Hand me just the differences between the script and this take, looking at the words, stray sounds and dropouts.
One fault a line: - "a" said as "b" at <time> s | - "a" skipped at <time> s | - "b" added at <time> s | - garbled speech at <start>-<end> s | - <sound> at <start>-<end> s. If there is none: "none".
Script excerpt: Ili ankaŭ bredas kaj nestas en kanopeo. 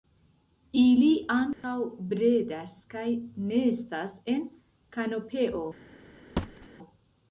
- dropout at 1.5-1.6 s
- thud at 6.4-6.7 s